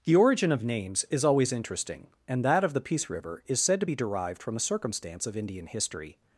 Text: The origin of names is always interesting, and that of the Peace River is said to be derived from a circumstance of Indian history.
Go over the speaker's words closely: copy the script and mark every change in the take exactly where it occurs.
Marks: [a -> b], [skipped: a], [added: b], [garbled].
The origin of names is always interesting, and that of the Peace River is said to be derived from a circumstance of Indian history.